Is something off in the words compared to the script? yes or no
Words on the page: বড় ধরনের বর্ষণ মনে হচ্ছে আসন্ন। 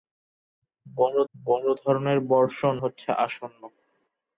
yes